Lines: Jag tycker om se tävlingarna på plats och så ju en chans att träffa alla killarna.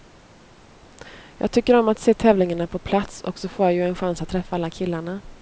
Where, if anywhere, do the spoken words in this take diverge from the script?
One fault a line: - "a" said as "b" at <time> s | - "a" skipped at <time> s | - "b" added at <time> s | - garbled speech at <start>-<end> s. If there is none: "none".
- "att" added at 1.9 s
- "får jag" added at 3.5 s